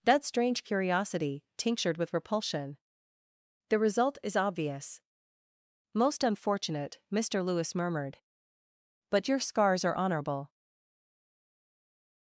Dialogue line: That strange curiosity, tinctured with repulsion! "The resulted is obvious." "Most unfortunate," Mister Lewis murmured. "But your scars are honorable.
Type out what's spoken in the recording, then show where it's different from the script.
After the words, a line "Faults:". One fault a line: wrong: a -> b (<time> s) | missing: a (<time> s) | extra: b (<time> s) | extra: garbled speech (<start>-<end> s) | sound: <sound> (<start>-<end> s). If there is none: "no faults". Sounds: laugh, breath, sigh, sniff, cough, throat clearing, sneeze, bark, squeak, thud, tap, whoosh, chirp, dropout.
That strange curiosity, tinctured with repulsion! "The result is obvious." "Most unfortunate," Mister Lewis murmured. "But your scars are honorable.
Faults:
wrong: resulted -> result (3.8 s)